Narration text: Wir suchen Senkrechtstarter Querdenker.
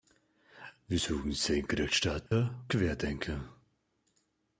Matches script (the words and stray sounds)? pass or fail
fail